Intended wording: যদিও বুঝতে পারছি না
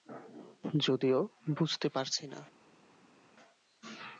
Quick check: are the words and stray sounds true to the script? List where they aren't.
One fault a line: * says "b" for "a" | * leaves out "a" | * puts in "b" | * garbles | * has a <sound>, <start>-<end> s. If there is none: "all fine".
all fine